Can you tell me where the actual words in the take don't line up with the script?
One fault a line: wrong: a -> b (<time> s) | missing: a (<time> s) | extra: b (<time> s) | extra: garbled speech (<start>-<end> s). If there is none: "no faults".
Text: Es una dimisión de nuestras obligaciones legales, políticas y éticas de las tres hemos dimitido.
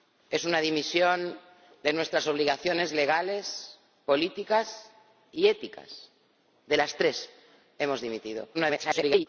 extra: garbled speech (8.5-9.3 s)